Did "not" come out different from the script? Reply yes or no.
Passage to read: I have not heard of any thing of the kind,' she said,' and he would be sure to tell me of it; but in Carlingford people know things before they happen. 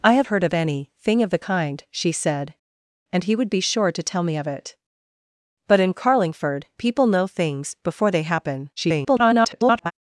yes